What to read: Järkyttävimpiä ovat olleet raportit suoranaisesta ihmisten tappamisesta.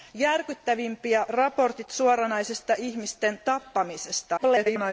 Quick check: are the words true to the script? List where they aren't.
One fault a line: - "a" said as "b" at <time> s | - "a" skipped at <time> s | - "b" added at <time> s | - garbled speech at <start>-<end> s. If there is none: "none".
- "ovat olleet" skipped at 1.2 s
- garbled speech at 4.4-4.9 s